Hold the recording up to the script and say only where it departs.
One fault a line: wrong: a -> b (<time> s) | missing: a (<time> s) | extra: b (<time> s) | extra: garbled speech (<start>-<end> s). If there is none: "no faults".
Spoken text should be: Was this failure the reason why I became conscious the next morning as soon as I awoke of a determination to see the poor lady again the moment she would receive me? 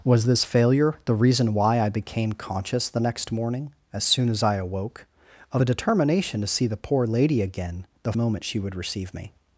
no faults